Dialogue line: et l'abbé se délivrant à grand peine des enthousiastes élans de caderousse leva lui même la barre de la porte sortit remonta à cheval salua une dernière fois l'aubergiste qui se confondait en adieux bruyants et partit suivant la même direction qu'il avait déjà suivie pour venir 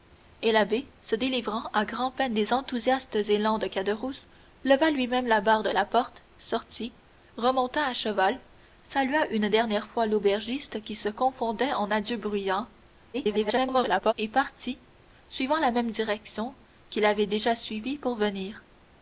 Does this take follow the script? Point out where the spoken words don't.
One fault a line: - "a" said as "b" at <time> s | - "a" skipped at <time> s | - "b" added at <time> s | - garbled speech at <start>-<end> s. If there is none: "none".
- garbled speech at 13.1-14.1 s